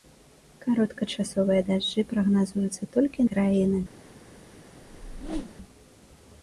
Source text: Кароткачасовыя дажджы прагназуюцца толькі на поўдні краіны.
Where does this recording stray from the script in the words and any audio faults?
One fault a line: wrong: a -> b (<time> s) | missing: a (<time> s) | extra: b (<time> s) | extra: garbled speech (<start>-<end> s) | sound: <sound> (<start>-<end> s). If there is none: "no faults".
missing: на поўдні (3.2 s)
sound: whoosh (4.8-5.6 s)